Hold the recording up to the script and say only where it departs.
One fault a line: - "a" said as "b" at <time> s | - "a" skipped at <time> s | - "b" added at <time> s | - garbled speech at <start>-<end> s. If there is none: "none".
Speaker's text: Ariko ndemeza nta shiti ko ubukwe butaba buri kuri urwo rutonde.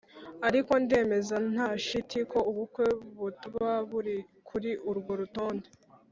none